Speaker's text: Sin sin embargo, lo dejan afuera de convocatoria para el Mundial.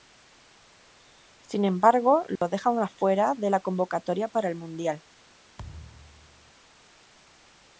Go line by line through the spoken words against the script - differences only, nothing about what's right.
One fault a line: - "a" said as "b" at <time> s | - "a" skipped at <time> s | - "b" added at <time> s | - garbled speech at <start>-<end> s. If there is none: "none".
- "sin" skipped at 1.6 s
- "la" added at 3.5 s